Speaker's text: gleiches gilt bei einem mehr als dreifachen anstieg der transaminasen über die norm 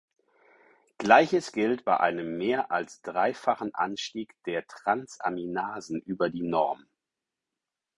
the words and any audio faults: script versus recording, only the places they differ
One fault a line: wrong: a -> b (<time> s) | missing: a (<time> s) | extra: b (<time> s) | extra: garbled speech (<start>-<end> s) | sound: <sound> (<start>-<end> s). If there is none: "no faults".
no faults